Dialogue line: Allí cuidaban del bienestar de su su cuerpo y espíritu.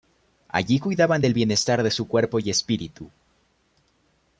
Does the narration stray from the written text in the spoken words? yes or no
yes